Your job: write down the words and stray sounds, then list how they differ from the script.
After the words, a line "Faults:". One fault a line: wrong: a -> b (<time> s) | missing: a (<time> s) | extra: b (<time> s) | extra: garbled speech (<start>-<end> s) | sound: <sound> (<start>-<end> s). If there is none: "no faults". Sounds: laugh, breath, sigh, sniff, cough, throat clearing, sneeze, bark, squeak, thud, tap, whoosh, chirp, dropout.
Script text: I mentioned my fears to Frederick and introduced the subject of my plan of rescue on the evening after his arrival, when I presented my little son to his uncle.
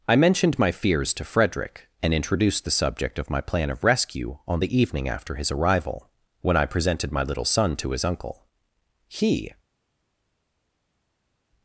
I mentioned my fears to Frederick and introduced the subject of my plan of rescue on the evening after his arrival, when I presented my little son to his uncle. "He
Faults:
extra: He (9.1 s)